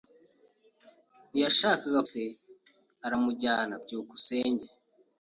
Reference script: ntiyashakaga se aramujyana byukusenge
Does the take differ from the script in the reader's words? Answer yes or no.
no